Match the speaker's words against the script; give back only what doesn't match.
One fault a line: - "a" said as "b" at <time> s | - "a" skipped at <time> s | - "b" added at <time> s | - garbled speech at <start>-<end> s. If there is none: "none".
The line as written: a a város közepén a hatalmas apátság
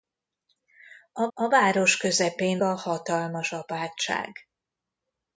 none